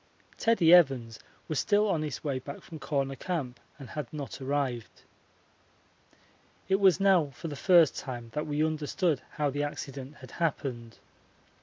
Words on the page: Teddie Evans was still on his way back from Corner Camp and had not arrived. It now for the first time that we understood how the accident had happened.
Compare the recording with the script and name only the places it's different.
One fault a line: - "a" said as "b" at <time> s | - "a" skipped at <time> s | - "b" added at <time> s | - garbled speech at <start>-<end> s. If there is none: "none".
- "was" added at 6.8 s